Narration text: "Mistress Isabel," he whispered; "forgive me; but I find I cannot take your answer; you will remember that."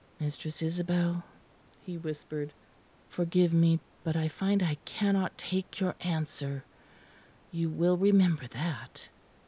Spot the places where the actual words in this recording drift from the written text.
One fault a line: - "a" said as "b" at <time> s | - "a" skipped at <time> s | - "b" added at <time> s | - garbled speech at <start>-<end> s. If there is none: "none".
none